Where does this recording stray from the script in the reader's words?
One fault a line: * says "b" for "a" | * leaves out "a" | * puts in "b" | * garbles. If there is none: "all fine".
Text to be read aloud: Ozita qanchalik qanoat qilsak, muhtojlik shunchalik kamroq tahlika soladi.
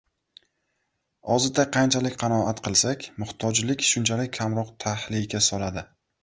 all fine